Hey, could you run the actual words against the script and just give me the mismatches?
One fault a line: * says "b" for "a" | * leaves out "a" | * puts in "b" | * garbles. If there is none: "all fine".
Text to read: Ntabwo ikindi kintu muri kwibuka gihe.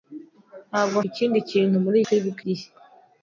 all fine